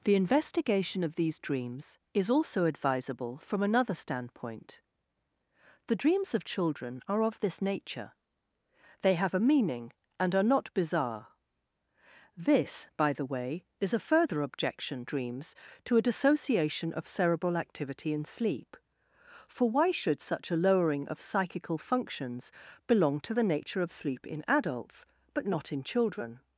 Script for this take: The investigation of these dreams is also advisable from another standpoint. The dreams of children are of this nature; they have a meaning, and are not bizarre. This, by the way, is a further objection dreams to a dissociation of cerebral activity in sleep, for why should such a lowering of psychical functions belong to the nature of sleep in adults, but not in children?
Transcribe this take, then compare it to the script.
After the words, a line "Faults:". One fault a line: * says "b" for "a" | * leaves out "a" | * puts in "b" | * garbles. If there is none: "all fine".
The investigation of these dreams is also advisable from another standpoint. The dreams of children are of this nature; they have a meaning, and are not bizarre. This, by the way, is a further objection dreams to a dissociation of cerebral activity in sleep, for why should such a lowering of psychical functions belong to the nature of sleep in adults, but not in children?
Faults:
all fine